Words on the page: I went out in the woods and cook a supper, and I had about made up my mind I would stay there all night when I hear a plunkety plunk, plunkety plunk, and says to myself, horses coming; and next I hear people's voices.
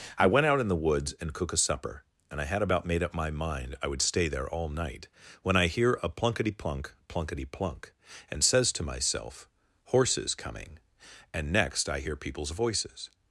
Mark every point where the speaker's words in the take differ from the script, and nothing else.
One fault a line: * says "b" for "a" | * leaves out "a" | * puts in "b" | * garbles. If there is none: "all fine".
all fine